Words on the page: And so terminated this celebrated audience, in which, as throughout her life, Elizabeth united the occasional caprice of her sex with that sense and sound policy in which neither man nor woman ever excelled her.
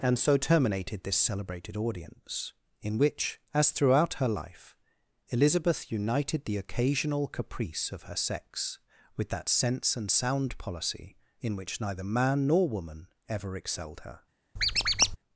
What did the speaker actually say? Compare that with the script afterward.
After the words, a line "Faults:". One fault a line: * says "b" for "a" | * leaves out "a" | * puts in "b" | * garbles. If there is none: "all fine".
And so terminated this celebrated audience, in which, as throughout her life, Elizabeth united the occasional caprice of her sex with that sense and sound policy in which neither man nor woman ever excelled her.
Faults:
all fine